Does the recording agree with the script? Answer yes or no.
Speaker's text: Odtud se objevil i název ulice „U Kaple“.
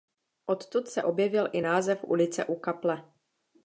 yes